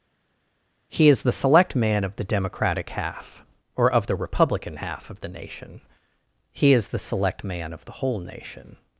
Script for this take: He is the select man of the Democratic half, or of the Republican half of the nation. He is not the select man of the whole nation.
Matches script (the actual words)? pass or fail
fail